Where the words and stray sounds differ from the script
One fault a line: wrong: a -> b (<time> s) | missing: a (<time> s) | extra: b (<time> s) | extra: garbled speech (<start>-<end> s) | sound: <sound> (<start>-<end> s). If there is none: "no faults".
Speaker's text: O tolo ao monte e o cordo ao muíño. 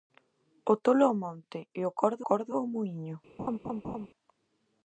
extra: cordo (2.3 s)
sound: laugh (3.4-4.1 s)